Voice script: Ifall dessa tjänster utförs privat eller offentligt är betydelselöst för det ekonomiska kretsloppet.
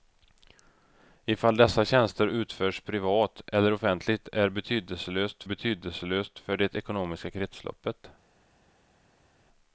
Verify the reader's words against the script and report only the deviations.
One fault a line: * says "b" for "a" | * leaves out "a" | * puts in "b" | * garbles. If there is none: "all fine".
* puts in "betydelselöst"